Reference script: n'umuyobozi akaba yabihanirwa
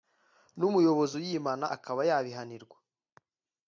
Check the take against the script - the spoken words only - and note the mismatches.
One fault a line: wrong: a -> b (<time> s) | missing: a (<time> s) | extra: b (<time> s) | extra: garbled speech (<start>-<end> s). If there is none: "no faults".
extra: uyimana (1.2 s)